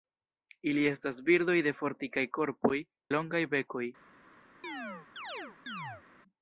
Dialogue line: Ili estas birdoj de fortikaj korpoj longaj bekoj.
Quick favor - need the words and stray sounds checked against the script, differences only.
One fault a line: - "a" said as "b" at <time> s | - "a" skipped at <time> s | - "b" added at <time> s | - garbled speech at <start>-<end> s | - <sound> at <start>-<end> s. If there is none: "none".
- chirp at 4.6-6.0 s